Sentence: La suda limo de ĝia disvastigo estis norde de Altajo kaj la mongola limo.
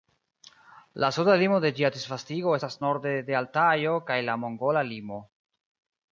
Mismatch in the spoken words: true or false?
true